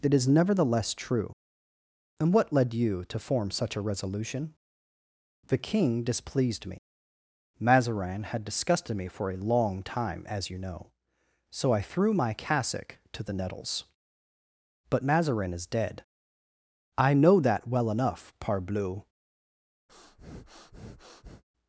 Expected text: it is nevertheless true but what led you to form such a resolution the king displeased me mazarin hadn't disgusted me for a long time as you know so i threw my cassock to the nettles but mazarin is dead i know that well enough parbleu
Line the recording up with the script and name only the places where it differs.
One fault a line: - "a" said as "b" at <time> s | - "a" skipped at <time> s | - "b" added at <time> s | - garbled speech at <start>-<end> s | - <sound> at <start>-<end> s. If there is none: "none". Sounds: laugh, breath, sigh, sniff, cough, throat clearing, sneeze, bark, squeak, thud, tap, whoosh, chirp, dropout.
- "but" said as "and" at 2.2 s
- "hadn't" said as "had" at 8.2 s
- breath at 19.9-21.4 s